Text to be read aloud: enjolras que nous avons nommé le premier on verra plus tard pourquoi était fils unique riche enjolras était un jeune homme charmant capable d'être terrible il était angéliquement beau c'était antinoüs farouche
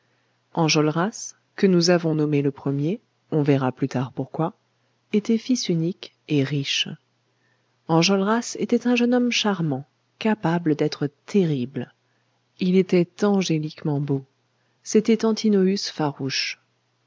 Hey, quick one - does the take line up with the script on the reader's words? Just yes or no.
no